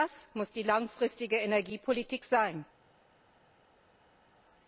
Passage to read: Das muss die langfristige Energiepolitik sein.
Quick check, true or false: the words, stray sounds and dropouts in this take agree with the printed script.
true